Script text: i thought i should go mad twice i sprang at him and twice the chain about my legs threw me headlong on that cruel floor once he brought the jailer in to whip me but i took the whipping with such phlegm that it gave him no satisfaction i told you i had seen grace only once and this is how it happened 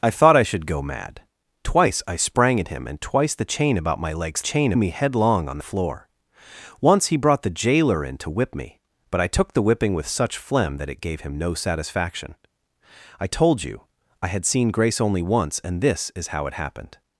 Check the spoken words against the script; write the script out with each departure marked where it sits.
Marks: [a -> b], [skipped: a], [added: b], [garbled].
i thought i should go mad twice i sprang at him and twice the chain about my legs [threw -> chain] me headlong on [skipped: that cruel] floor once he brought the jailer in to whip me but i took the whipping with such phlegm that it gave him no satisfaction i told you i had seen grace only once and this is how it happened